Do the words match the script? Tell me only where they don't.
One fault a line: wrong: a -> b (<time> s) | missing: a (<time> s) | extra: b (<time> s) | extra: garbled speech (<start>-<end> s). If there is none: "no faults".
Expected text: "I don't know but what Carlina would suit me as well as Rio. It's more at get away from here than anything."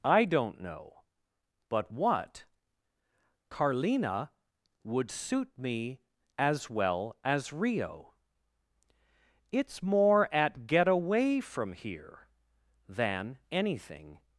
no faults